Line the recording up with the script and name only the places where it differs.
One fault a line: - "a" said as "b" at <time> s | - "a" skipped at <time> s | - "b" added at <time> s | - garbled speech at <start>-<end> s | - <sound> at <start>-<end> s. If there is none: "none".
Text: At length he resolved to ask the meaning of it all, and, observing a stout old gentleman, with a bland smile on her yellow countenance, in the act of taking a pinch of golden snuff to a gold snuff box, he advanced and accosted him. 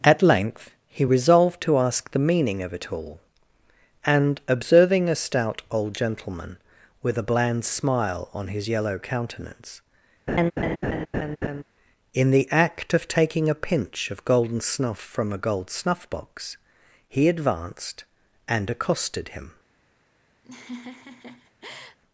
- "her" said as "his" at 8.5 s
- laugh at 10.3-11.6 s
- "to" said as "from" at 15.0 s
- laugh at 20.4-22.0 s